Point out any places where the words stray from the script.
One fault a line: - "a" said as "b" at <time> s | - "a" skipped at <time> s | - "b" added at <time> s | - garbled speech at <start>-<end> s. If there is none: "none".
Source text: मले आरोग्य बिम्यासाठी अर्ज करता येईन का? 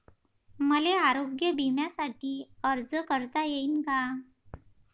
none